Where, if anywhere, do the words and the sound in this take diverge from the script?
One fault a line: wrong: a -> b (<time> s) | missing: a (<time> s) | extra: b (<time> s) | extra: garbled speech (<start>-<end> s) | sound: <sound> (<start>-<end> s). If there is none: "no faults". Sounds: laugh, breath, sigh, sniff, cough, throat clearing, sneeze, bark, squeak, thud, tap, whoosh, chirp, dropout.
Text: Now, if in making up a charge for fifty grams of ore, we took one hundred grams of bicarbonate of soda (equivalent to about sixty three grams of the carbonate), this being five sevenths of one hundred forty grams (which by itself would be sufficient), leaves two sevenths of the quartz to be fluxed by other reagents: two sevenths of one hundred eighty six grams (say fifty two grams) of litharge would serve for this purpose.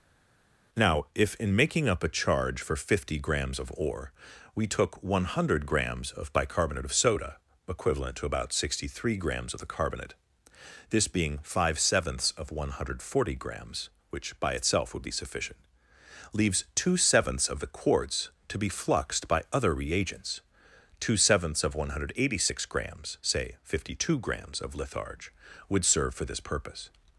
no faults